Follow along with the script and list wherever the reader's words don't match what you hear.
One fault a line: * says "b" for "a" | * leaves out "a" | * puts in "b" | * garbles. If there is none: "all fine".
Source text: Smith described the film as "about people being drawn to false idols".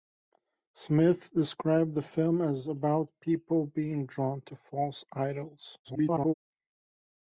* garbles